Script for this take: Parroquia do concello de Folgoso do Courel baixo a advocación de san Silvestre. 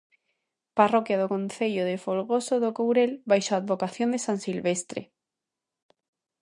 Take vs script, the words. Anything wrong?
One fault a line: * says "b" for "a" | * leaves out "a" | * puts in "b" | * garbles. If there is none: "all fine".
all fine